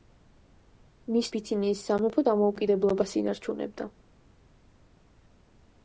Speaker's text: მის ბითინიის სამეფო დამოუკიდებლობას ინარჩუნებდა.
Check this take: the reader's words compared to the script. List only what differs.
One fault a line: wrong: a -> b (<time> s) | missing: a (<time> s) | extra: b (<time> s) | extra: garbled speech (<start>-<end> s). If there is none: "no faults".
no faults